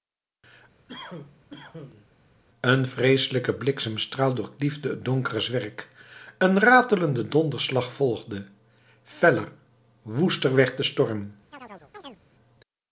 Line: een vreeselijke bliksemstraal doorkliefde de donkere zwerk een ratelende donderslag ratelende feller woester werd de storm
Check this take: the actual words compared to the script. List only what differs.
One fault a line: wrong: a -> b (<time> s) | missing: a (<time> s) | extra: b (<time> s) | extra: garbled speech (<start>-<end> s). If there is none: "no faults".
wrong: de -> het (4.9 s)
wrong: ratelende -> volgde (7.9 s)